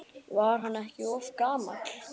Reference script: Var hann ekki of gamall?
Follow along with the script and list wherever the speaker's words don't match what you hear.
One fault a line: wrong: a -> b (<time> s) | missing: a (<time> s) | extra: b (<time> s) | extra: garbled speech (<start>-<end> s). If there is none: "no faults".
no faults